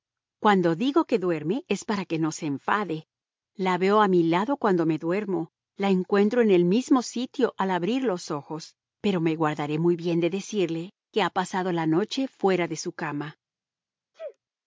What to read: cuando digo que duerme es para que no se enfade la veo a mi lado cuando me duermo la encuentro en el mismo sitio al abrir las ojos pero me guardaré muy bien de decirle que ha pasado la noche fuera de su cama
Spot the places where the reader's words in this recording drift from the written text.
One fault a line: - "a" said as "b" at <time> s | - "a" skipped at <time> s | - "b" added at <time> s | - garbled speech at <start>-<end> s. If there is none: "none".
- "las" said as "los" at 8.0 s